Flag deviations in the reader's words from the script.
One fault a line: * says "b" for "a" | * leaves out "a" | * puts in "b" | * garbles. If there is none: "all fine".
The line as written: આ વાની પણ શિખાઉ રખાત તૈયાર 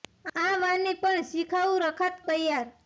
all fine